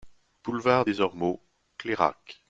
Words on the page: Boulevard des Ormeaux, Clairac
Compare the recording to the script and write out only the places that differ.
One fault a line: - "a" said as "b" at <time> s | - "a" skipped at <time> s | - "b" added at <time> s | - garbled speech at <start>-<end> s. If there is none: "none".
none